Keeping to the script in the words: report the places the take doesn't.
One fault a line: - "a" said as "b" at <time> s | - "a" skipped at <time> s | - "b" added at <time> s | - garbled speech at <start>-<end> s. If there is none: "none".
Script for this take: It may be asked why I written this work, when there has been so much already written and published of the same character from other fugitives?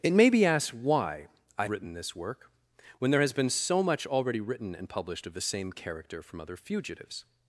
none